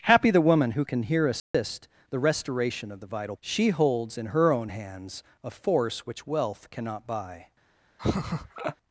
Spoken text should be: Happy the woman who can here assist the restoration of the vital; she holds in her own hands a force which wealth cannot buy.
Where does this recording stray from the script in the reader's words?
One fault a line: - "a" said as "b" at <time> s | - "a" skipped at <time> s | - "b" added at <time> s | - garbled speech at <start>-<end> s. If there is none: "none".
none